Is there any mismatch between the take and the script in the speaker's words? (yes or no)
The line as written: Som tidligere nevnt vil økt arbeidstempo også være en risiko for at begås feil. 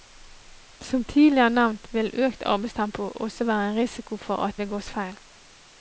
no